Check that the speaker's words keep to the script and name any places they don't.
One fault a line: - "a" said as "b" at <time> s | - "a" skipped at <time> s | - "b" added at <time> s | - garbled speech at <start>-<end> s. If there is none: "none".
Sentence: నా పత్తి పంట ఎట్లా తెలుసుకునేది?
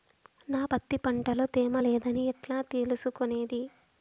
- "లో తేమ లేదని" added at 1.3 s